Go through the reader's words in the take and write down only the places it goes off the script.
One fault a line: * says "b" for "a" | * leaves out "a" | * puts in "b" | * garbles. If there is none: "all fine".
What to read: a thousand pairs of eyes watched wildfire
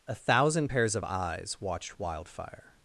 all fine